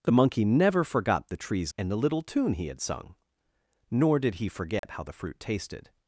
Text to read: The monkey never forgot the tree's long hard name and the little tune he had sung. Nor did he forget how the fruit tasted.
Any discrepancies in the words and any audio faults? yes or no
yes